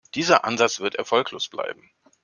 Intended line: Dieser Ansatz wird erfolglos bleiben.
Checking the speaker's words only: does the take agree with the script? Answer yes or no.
yes